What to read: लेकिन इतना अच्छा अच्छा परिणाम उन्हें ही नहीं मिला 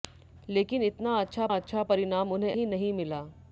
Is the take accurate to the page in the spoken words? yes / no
yes